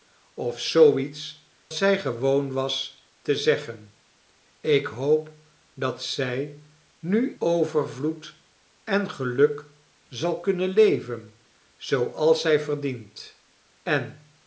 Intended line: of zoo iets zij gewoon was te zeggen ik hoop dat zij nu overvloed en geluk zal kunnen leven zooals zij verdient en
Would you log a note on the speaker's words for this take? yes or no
no